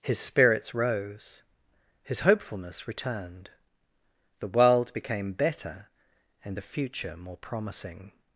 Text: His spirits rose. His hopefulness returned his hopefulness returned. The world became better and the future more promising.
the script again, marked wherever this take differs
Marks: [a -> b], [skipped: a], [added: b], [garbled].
His spirits rose. His hopefulness returned [skipped: his hopefulness returned.] The world became better and the future more promising.